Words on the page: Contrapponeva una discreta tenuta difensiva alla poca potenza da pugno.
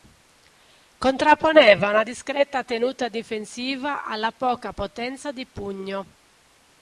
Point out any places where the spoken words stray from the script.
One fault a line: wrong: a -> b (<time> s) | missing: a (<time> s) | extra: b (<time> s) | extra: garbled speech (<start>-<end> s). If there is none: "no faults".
wrong: da -> di (5.3 s)